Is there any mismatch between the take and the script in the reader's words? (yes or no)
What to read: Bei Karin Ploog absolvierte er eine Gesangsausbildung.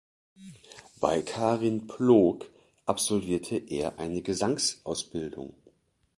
no